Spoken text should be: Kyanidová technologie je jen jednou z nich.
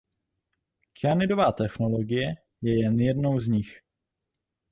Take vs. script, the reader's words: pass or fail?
pass